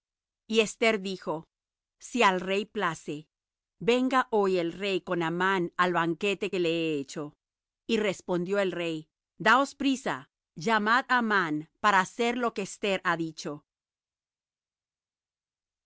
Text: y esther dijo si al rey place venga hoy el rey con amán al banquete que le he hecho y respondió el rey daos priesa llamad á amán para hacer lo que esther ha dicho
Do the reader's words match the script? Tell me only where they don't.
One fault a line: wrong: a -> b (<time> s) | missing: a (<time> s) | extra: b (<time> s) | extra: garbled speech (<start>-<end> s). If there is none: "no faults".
no faults